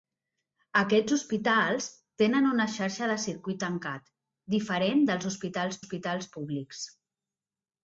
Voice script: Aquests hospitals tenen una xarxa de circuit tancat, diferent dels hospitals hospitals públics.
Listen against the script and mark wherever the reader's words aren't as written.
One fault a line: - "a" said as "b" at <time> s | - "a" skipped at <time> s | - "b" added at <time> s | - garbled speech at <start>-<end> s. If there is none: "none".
none